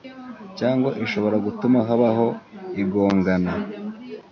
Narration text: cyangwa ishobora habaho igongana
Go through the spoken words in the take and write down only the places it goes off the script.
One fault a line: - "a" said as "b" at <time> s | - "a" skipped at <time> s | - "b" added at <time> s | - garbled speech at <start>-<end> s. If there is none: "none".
- "gutuma" added at 1.4 s